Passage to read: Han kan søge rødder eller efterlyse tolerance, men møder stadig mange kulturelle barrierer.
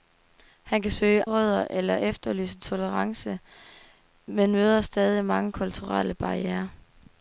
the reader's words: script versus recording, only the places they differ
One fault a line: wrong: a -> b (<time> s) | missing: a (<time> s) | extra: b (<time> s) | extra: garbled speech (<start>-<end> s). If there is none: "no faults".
no faults